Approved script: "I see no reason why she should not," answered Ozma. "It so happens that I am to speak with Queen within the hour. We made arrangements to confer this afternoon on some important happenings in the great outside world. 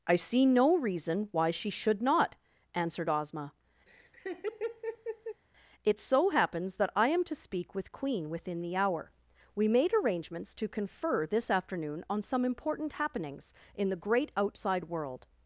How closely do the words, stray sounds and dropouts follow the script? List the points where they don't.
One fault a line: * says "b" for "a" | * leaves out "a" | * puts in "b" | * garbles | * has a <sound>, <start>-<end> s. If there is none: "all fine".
* has a laugh, 3.9-5.4 s